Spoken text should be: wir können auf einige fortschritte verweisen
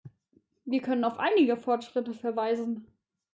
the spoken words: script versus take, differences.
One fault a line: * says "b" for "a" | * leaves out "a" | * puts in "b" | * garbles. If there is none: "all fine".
all fine